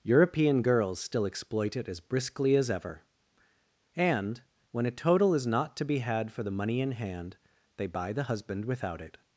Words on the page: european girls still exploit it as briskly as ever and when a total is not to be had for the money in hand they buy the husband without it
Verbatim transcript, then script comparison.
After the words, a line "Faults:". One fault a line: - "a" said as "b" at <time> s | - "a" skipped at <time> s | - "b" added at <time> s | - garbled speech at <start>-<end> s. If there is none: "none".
european girls still exploit it as briskly as ever and when a total is not to be had for the money in hand they buy the husband without it
Faults:
none